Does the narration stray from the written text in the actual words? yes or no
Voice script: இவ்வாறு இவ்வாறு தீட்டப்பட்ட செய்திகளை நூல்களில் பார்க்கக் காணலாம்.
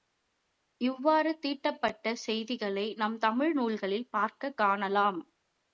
yes